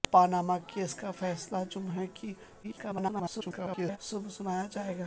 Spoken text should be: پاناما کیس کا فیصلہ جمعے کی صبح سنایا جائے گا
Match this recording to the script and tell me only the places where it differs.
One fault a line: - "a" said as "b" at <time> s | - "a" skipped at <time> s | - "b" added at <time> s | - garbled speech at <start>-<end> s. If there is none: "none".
- garbled speech at 2.6-4.0 s